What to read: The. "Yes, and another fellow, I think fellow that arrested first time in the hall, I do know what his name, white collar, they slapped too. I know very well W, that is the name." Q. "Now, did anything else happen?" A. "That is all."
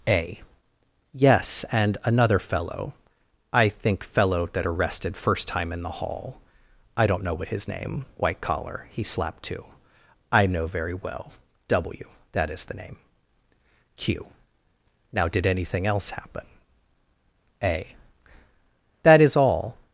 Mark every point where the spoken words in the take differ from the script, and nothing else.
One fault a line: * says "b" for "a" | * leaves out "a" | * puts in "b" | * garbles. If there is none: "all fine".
* says "A" for "The"
* says "don't" for "do"
* says "he" for "they"